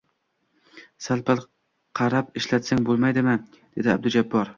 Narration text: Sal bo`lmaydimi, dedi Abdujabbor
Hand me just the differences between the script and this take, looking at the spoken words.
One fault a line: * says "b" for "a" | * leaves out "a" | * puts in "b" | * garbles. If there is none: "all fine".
* puts in "pal qarab ishlatsang"